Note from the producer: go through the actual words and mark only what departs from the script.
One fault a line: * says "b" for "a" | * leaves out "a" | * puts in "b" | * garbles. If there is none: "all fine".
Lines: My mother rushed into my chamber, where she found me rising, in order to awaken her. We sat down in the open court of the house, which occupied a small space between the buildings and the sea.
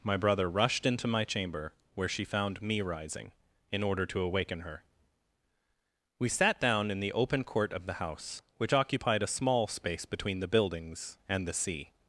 * says "brother" for "mother"